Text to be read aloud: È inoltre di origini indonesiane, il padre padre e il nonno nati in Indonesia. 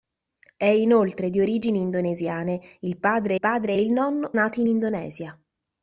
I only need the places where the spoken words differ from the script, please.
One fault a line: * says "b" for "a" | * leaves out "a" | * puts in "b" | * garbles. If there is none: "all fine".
all fine